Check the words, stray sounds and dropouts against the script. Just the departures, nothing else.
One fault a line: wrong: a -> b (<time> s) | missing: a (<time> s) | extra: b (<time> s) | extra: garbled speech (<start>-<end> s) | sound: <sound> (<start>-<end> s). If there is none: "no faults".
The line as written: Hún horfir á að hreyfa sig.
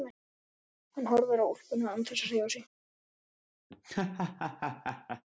wrong: Hún -> Hann (0.9 s)
extra: úlpuna án þess (1.5 s)
sound: laugh (3.7-5.2 s)